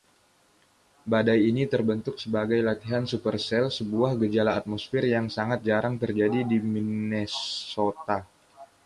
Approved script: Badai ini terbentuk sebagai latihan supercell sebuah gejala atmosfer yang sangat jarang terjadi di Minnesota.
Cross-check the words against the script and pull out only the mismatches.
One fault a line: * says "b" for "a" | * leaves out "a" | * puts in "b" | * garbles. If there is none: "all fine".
all fine